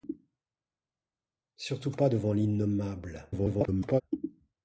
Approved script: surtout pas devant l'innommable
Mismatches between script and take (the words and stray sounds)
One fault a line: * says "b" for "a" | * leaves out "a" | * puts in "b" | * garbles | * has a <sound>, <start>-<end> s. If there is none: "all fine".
* garbles